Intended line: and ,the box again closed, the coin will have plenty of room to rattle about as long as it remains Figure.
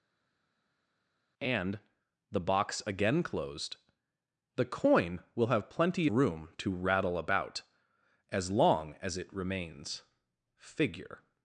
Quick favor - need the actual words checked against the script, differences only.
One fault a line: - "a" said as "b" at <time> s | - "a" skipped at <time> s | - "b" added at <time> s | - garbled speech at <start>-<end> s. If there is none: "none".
- "of" skipped at 6.1 s